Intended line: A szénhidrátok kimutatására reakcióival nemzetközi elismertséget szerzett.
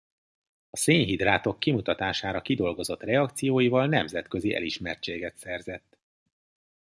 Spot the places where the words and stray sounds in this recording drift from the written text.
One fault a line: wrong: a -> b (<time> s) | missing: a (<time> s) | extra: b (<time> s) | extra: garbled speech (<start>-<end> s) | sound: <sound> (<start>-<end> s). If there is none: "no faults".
extra: kidolgozott (2.4 s)